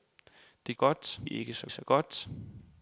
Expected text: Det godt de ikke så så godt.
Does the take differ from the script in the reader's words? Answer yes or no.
no